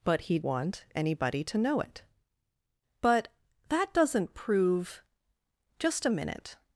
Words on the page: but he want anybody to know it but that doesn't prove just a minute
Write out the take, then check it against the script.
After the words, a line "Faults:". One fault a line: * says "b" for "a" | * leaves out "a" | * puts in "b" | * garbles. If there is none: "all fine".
but he want anybody to know it but that doesn't prove just a minute
Faults:
all fine